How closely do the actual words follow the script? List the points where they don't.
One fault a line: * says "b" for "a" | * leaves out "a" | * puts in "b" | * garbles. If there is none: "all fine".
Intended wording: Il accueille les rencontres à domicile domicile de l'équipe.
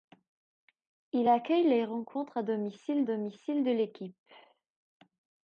all fine